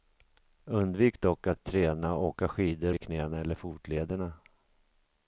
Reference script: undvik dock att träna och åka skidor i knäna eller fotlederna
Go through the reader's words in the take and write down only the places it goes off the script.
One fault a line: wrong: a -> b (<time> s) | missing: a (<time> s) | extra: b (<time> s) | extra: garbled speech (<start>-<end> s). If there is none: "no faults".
no faults